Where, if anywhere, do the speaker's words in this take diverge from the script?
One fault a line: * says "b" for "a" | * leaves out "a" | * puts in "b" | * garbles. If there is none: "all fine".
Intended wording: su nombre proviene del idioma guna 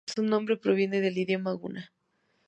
all fine